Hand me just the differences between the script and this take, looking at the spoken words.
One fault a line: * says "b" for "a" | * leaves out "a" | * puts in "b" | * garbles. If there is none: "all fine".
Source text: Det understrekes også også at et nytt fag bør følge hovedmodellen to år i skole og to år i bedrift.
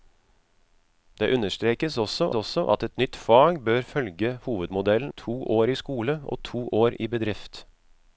all fine